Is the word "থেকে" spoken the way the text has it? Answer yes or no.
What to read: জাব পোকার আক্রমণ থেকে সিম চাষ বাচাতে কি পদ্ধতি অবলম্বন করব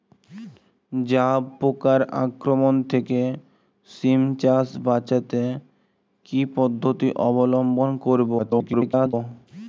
yes